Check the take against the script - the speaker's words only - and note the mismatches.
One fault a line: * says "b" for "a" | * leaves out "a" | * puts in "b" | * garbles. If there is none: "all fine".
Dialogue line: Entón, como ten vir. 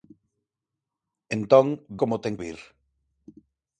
all fine